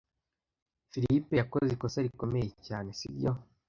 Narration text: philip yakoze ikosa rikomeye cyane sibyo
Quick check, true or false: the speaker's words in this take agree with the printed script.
true